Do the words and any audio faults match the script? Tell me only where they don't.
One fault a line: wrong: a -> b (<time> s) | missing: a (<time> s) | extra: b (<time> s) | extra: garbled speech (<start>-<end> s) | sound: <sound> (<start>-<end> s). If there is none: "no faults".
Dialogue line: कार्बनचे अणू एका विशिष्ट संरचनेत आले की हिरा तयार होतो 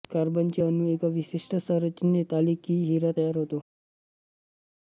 no faults